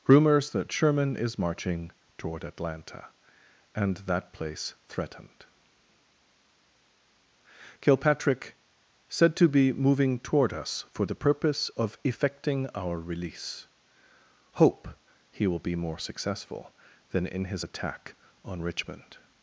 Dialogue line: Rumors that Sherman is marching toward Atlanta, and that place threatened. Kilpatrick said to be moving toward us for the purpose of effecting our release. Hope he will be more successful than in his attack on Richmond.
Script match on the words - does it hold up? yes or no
yes